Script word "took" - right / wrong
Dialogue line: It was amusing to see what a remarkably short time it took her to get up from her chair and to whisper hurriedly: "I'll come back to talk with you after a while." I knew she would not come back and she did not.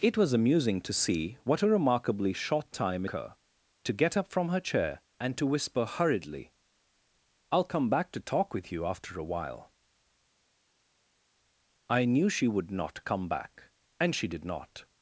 wrong